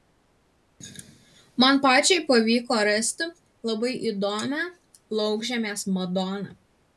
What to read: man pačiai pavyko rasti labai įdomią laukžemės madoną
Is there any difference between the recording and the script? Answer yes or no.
no